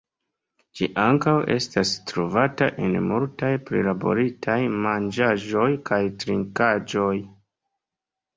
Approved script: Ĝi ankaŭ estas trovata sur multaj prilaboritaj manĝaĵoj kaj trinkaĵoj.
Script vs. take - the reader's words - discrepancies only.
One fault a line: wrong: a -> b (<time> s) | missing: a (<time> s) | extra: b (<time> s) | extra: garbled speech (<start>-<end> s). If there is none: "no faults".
wrong: sur -> en (2.9 s)